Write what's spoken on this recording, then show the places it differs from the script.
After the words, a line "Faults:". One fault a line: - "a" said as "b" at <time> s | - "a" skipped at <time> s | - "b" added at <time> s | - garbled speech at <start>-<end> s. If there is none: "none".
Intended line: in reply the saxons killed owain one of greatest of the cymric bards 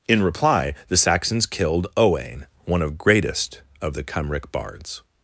in reply the saxons killed owain one of greatest of the cymric bards
Faults:
none